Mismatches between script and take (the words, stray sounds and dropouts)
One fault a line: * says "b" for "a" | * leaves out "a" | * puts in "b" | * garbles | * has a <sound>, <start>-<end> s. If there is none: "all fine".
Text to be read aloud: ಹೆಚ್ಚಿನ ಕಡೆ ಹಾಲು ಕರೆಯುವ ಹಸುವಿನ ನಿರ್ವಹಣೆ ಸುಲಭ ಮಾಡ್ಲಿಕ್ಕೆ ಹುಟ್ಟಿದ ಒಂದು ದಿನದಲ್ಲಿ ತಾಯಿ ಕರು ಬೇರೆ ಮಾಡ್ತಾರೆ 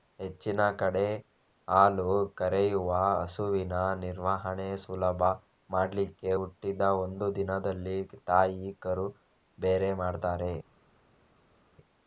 all fine